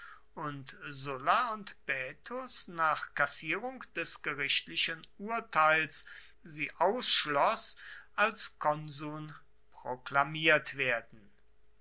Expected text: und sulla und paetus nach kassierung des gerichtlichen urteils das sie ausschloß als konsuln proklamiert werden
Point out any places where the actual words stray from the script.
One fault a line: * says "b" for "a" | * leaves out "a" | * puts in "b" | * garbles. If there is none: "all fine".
* leaves out "das"